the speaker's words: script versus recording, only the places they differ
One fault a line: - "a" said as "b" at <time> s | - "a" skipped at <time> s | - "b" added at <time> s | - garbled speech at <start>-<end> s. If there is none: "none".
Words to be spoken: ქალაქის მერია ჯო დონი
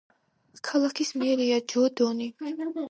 none